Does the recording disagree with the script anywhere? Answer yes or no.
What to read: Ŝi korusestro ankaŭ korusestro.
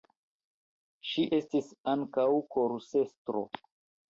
yes